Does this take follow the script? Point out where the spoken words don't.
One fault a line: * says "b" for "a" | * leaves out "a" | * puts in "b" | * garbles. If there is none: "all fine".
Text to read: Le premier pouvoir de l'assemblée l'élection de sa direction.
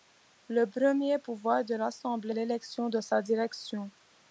all fine